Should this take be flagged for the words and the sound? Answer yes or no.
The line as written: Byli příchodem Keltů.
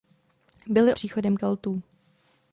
no